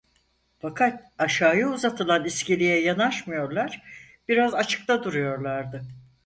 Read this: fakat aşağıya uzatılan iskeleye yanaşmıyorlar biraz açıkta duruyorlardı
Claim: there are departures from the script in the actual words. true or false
false